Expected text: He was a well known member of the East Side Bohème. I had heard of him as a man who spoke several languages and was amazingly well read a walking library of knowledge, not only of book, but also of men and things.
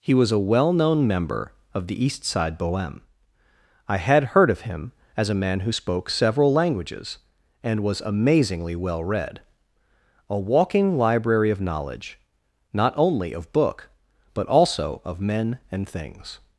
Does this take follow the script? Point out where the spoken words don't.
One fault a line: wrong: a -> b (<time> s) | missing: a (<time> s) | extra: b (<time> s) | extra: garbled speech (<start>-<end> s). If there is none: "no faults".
no faults